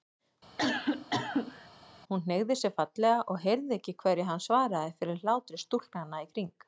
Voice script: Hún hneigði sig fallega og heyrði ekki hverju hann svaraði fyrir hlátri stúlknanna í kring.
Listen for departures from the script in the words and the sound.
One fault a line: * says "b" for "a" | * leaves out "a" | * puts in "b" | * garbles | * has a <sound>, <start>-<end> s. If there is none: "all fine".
* has a cough, 0.6-1.7 s